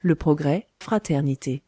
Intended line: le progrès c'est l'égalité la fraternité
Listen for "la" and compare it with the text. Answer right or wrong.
wrong